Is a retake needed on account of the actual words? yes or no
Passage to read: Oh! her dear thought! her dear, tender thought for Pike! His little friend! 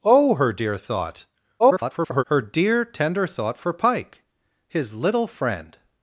yes